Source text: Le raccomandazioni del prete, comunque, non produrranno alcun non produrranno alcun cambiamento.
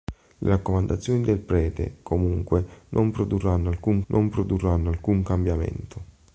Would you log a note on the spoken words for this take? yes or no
no